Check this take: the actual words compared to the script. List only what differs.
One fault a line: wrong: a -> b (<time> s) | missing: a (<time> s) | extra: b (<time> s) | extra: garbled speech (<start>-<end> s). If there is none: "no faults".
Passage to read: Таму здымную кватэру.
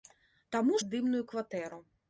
no faults